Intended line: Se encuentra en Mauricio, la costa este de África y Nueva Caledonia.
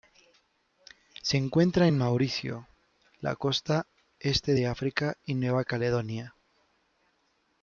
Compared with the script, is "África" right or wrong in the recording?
right